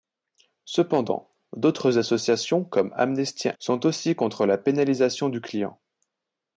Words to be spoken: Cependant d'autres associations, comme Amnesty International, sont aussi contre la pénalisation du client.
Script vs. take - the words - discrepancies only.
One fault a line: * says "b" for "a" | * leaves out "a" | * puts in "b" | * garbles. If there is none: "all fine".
* leaves out "International"